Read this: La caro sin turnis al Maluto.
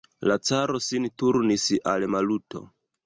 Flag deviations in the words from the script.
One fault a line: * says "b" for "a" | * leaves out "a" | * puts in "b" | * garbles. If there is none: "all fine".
all fine